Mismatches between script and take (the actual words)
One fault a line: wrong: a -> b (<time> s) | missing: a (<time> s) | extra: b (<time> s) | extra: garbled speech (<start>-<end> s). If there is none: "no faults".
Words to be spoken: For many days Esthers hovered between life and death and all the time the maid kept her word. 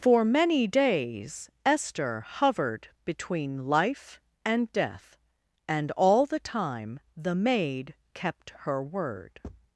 wrong: Esthers -> Esther (1.6 s)